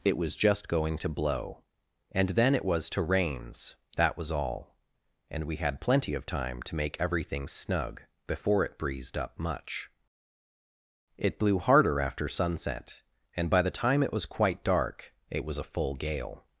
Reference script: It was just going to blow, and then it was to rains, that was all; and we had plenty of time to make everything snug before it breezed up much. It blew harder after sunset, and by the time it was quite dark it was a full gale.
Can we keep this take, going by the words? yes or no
yes